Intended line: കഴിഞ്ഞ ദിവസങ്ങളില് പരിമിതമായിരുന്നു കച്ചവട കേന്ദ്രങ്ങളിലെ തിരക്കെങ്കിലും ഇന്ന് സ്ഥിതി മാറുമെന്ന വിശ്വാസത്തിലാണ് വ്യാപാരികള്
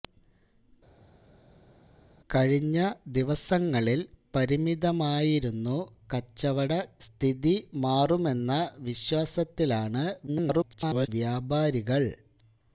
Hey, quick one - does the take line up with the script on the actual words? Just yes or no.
no